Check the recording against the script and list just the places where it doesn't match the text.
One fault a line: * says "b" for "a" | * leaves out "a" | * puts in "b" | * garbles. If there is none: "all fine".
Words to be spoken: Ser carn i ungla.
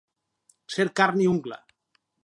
all fine